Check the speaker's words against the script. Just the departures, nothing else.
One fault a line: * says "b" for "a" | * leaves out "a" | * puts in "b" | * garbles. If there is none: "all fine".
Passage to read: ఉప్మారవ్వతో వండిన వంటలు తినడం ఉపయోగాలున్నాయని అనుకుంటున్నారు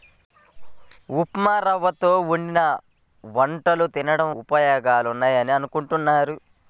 all fine